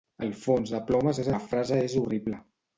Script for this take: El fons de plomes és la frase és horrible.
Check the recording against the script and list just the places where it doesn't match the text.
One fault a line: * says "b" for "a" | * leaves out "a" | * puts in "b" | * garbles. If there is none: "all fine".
all fine